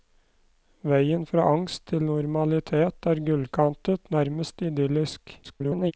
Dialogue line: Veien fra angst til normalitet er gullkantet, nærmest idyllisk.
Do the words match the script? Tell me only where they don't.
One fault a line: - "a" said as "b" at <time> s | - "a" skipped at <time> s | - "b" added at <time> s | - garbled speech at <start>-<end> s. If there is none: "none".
- garbled speech at 5.4-5.9 s